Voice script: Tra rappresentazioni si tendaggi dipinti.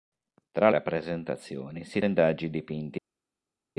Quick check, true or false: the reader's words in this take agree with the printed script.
true